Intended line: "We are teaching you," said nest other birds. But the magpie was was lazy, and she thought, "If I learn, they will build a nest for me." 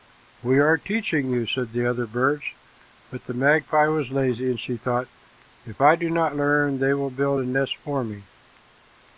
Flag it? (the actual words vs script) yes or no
yes